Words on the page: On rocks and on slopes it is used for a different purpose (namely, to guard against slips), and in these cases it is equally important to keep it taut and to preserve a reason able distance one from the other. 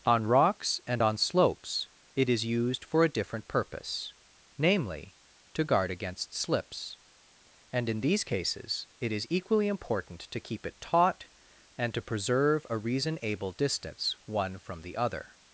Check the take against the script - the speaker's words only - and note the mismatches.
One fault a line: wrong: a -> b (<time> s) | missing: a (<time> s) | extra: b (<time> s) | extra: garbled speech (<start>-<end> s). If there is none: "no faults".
no faults